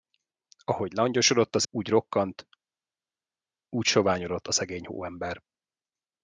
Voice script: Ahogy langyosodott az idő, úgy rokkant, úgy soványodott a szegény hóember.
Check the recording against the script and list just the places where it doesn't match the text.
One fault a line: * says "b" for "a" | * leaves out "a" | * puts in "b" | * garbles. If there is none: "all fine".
* leaves out "idő"